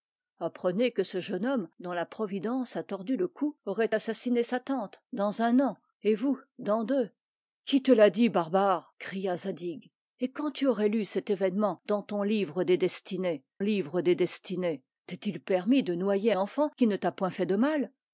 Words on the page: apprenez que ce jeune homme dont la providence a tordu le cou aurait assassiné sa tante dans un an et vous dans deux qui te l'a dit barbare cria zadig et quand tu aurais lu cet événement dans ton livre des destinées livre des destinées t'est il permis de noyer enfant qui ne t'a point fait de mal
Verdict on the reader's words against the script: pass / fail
pass